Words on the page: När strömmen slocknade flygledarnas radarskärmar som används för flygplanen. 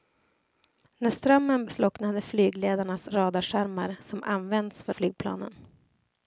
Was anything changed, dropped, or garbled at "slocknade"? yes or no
no